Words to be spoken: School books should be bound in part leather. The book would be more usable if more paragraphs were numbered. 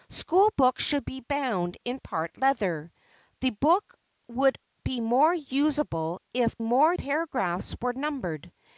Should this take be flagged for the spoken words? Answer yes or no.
no